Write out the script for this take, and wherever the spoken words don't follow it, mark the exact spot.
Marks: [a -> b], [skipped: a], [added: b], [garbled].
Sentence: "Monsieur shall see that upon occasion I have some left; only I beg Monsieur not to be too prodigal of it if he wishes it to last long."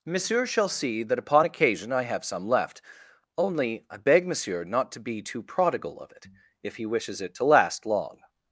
"Monsieur shall see that upon occasion I have some left; only I beg Monsieur not to be too prodigal of it if he wishes it to last long."